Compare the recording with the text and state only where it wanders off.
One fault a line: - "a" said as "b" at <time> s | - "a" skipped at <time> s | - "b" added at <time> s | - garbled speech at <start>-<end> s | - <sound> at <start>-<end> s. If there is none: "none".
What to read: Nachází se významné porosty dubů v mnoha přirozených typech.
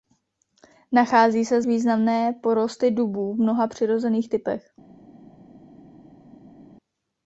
none